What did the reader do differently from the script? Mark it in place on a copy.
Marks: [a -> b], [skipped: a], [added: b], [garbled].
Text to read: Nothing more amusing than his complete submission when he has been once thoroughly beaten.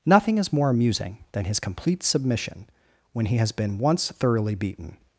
Nothing [added: is] more amusing than his complete submission when he has been once thoroughly beaten.